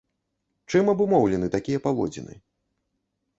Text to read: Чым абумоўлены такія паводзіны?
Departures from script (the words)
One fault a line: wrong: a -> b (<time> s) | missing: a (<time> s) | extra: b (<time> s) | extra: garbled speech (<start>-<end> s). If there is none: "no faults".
no faults